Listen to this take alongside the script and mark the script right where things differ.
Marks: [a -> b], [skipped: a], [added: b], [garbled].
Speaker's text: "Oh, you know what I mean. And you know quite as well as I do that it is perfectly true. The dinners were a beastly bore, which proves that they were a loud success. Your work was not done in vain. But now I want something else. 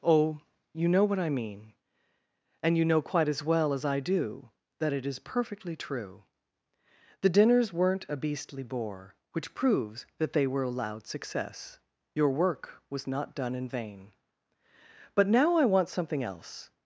"Oh, you know what I mean. And you know quite as well as I do that it is perfectly true. The dinners [were -> weren't] a beastly bore, which proves that they were a loud success. Your work was not done in vain. But now I want something else.